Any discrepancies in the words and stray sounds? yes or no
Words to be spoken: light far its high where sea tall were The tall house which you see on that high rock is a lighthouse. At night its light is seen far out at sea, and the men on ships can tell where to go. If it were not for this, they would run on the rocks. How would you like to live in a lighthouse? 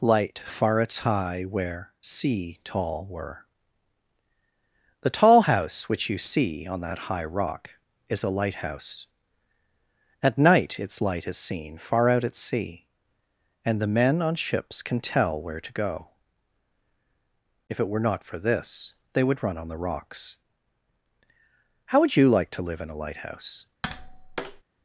yes